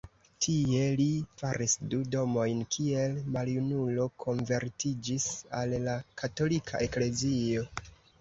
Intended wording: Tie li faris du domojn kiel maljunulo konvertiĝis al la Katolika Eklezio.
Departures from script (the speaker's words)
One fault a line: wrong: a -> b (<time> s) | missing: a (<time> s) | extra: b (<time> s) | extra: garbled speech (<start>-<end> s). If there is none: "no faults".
no faults